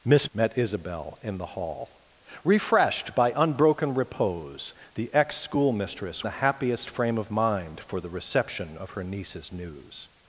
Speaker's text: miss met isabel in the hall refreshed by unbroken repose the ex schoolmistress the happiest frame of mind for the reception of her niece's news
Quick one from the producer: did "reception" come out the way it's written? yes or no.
yes